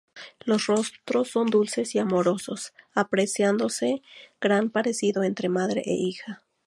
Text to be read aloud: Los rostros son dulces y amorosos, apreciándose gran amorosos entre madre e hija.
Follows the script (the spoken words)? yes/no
no